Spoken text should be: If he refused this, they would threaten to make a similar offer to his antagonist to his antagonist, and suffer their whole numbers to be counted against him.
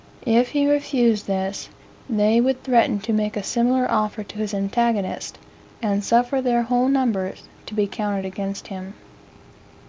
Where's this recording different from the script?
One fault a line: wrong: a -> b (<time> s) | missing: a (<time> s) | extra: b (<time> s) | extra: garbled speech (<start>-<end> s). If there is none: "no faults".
missing: to his antagonist (5.4 s)